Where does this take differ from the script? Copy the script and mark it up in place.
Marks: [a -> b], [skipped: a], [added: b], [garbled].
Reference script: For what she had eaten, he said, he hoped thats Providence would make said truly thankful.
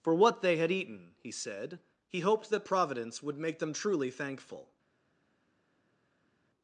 For what [she -> they] had eaten, he said, he hoped [thats -> that] Providence would make [said -> them] truly thankful.